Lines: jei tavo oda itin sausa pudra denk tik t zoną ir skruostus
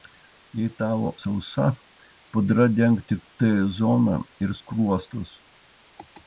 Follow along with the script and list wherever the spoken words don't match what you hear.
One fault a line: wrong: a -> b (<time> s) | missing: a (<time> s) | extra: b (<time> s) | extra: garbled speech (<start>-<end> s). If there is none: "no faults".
missing: oda itin (1.1 s)